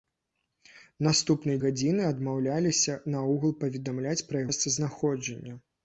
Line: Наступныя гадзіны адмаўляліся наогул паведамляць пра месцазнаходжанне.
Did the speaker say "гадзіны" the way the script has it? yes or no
yes